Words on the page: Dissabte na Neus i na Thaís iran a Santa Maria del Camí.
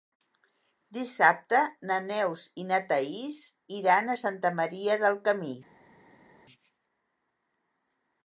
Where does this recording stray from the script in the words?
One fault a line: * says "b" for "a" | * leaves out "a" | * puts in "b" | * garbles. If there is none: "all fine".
all fine